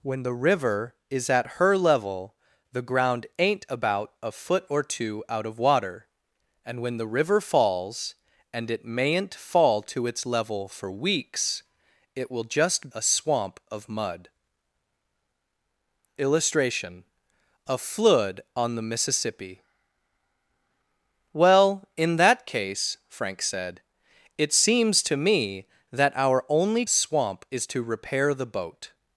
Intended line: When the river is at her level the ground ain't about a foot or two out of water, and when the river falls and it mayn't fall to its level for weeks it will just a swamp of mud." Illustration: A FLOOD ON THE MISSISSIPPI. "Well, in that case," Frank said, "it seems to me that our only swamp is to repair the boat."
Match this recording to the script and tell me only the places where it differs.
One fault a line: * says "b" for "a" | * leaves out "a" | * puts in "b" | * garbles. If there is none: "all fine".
all fine